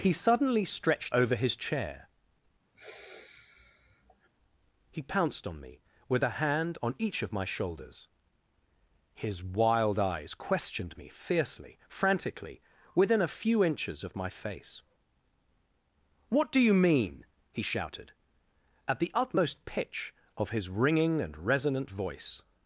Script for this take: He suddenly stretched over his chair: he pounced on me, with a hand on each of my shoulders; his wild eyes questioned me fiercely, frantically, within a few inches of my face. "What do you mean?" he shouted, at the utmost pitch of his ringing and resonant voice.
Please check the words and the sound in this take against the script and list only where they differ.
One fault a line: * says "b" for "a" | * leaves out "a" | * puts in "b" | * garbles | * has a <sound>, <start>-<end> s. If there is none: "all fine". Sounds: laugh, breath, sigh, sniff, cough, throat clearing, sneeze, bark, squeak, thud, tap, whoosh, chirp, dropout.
* has a sigh, 2.7-4.3 s